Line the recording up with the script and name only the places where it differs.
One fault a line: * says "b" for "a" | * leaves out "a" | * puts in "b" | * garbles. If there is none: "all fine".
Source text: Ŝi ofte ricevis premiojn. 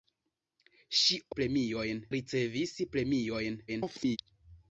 * says "premiojn" for "ofte"
* garbles